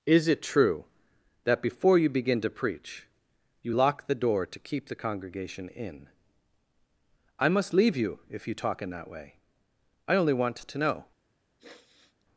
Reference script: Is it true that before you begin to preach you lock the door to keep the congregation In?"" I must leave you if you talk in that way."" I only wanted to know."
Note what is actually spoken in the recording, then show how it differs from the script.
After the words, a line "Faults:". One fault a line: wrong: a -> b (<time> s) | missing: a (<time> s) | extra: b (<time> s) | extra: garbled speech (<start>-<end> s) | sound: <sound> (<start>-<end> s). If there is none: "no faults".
Is it true that before you begin to preach you lock the door to keep the congregation In?"" I must leave you if you talk in that way."" I only want to know."
Faults:
wrong: wanted -> want (10.3 s)
sound: sniff (11.6-12.3 s)